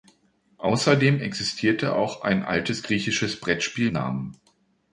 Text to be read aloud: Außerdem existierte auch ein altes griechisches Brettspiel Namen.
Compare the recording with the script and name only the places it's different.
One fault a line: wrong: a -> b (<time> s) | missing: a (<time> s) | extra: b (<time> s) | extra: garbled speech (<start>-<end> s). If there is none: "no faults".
no faults